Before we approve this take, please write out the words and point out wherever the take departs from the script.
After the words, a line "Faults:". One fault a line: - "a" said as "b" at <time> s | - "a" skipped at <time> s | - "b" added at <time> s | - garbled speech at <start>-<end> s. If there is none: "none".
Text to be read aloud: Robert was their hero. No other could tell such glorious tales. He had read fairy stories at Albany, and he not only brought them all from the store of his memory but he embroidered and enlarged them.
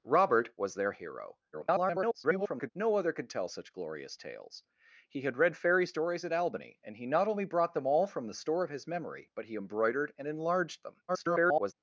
Robert was their hero. [garbled] No other could tell such glorious tales. He had read fairy stories at Albany, and he not only brought them all from the store of his memory but he embroidered and enlarged them. [garbled]
Faults:
- garbled speech at 1.5-2.7 s
- garbled speech at 11.1-11.7 s